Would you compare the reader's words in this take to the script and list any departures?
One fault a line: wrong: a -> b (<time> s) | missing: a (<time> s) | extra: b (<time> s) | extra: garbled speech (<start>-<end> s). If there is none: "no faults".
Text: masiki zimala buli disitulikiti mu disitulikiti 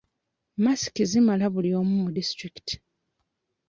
wrong: disitulikiti -> omu (1.8 s)